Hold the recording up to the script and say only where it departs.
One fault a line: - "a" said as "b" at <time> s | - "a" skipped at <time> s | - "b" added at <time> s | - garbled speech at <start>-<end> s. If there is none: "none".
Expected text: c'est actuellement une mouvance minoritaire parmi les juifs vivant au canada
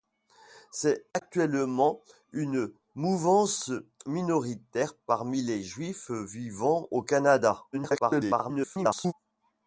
- garbled speech at 7.7-9.1 s